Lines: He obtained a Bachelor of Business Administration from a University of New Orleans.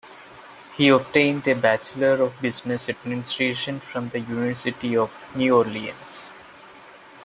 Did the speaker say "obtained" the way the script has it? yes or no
yes